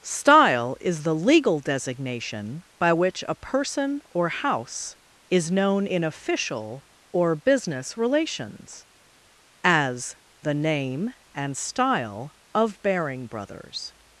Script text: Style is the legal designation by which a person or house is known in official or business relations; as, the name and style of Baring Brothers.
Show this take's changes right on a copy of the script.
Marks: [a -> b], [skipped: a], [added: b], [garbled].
Style is the legal designation by which a person or house is known in official or business relations; as, the name and style of Baring Brothers.